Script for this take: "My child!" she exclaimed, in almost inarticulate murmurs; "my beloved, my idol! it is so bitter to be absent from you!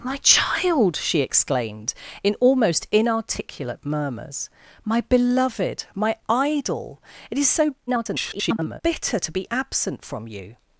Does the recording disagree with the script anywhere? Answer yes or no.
yes